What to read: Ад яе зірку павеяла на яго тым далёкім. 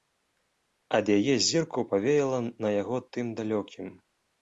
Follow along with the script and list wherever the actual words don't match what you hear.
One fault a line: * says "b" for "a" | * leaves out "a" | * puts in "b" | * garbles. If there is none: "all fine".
all fine